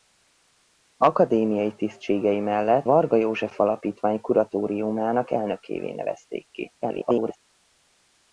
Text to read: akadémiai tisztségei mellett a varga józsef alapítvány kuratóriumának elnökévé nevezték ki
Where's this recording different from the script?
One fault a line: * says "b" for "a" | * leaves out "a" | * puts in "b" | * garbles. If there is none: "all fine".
* leaves out "a"
* garbles